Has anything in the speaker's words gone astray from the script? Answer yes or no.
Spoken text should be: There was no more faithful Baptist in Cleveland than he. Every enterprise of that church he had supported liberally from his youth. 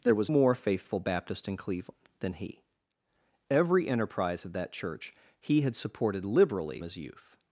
yes